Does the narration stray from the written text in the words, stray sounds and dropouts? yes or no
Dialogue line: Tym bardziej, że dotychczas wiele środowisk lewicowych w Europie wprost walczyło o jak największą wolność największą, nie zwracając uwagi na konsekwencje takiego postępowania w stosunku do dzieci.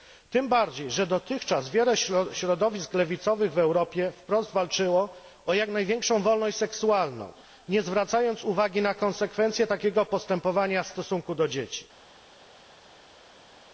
yes